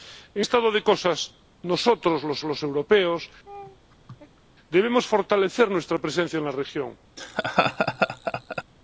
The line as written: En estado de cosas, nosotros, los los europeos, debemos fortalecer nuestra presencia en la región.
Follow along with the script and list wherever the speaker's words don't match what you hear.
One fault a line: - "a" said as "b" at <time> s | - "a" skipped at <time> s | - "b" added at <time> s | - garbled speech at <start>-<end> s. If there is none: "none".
none